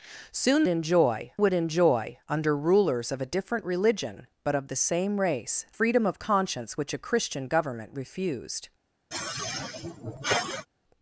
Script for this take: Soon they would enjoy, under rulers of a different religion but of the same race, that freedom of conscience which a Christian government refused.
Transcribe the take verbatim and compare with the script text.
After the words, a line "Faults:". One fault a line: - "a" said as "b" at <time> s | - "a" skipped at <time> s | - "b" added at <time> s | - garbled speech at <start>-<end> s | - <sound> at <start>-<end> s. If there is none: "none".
Soon enjoy would enjoy, under rulers of a different religion but of the same race, freedom of conscience which a Christian government refused.
Faults:
- "they" said as "enjoy" at 0.7 s
- "that" skipped at 5.6 s
- sigh at 9.1-10.7 s